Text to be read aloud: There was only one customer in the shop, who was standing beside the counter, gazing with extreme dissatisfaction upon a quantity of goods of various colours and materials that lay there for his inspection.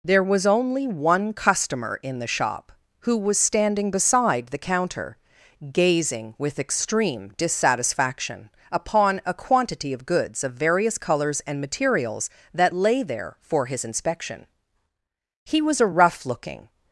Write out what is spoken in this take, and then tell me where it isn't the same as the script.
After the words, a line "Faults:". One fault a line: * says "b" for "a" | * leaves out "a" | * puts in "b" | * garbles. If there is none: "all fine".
There was only one customer in the shop, who was standing beside the counter, gazing with extreme dissatisfaction upon a quantity of goods of various colours and materials that lay there for his inspection. He was a rough looking
Faults:
* puts in "He was a rough looking"